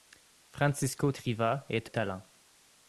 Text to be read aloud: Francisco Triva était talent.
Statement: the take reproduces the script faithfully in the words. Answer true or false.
true